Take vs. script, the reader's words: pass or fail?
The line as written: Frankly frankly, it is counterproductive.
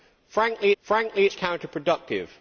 pass